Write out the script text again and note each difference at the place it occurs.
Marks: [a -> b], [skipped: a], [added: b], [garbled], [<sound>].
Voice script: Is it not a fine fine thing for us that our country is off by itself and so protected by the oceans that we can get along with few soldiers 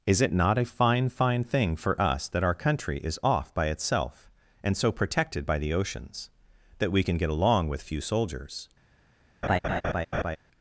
Is it not a fine fine thing for us that our country is off by itself and so protected by the oceans that we can get along with few soldiers [laugh]